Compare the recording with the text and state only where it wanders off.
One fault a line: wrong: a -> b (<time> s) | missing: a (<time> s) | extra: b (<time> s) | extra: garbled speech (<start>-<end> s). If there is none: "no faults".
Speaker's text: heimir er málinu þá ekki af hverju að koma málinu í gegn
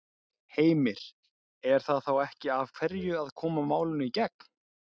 wrong: málinu -> það (1.9 s)